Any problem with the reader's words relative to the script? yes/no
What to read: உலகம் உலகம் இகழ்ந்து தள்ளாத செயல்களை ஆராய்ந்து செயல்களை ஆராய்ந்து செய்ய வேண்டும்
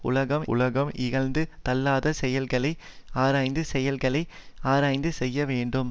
no